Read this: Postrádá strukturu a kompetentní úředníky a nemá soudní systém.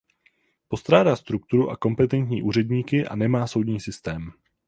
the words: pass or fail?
pass